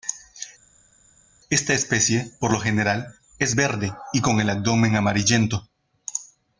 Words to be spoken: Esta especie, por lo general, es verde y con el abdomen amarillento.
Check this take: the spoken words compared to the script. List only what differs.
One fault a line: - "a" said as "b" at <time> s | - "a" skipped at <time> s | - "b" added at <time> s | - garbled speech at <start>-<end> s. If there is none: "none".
none